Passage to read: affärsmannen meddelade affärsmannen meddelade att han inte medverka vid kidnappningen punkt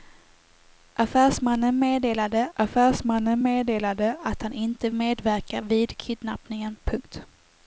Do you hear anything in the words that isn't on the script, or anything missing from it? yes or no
no